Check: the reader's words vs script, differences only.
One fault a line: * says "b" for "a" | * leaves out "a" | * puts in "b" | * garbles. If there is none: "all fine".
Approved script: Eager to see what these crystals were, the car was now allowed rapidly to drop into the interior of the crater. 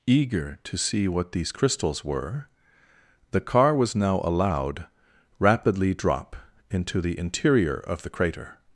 * leaves out "to"